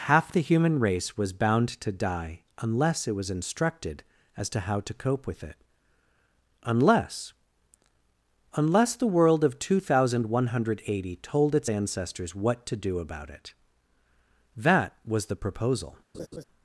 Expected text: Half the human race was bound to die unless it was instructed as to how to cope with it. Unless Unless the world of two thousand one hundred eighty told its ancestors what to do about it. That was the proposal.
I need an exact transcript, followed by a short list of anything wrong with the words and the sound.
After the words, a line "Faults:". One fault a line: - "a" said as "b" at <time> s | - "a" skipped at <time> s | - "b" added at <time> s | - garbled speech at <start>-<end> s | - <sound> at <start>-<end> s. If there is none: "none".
Half the human race was bound to die unless it was instructed as to how to cope with it. Unless Unless the world of two thousand one hundred eighty told its ancestors what to do about it. That was the proposal.
Faults:
- laugh at 16.1-16.4 s